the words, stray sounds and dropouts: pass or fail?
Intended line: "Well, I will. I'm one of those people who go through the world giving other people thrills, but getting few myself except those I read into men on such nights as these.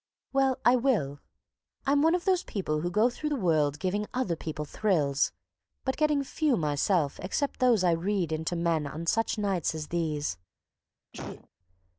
fail